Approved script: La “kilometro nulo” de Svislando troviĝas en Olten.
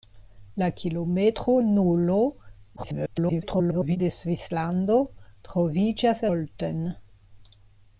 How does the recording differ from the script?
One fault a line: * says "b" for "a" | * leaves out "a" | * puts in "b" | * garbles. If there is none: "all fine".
* garbles
* leaves out "en"